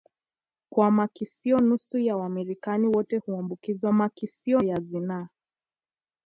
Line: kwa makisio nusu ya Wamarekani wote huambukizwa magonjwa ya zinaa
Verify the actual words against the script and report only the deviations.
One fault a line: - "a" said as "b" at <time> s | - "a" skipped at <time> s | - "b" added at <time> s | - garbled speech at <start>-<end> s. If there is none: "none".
- "magonjwa" said as "makisio" at 3.9 s